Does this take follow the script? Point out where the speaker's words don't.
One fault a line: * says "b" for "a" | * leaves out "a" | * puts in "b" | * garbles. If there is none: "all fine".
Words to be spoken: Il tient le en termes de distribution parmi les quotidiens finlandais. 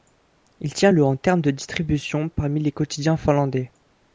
all fine